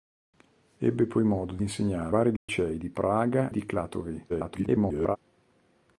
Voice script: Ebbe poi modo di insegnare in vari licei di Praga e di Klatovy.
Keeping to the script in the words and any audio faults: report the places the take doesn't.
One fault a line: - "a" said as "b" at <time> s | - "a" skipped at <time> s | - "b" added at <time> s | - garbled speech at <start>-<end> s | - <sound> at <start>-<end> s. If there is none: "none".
- "in" skipped at 2.1 s
- dropout at 2.4-2.5 s
- "e" skipped at 3.5 s
- garbled speech at 4.3-5.2 s